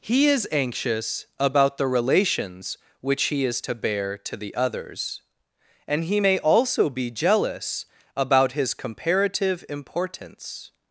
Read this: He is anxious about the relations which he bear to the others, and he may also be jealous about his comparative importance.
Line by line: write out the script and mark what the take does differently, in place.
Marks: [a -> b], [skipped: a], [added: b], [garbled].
He is anxious about the relations which he [added: is to] bear to the others, and he may also be jealous about his comparative importance.